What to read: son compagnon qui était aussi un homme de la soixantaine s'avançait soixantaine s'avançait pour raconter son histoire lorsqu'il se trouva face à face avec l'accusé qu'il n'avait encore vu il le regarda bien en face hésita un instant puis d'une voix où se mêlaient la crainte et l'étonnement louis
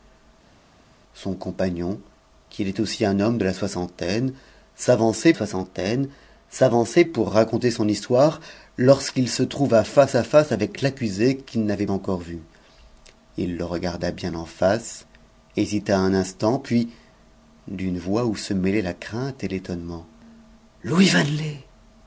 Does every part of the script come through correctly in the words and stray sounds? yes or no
yes